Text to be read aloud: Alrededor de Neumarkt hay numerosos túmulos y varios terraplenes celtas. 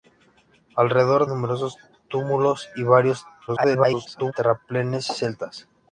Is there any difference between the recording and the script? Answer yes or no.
yes